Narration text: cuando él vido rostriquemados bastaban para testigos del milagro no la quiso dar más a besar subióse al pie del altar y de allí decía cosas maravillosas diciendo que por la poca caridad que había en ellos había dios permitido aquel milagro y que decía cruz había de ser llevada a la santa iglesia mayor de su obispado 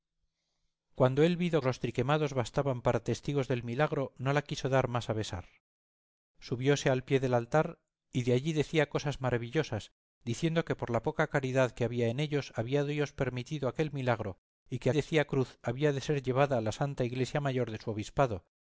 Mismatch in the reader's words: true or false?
false